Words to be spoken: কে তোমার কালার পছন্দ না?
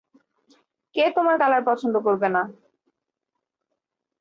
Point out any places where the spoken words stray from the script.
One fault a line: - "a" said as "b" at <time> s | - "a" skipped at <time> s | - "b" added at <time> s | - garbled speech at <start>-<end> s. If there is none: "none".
- "করবে" added at 2.1 s